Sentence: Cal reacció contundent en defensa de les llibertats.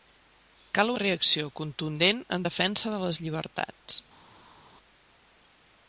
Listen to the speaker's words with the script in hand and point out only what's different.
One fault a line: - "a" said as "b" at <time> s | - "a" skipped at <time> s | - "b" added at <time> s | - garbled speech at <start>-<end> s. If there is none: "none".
none